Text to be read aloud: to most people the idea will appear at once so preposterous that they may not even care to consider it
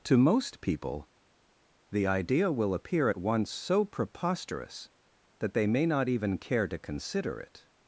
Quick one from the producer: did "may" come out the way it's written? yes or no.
yes